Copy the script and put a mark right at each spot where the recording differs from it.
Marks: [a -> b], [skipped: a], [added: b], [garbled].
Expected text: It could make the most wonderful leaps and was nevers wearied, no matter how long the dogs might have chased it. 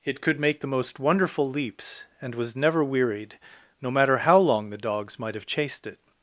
It could make the most wonderful leaps and was [nevers -> never] wearied, no matter how long the dogs might have chased it.